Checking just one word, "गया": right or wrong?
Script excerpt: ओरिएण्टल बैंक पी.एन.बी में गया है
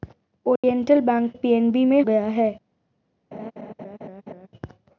right